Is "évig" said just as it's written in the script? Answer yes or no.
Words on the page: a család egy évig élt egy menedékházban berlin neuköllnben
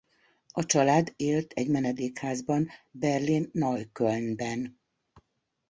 no